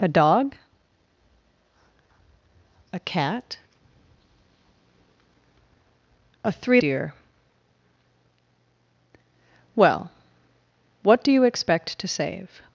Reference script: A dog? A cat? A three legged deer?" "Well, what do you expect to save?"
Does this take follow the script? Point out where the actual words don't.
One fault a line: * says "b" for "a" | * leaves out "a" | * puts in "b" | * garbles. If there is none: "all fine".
* leaves out "legged"